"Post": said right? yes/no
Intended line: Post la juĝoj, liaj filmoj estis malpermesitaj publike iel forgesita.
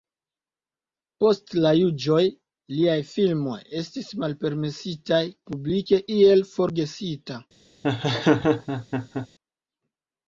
yes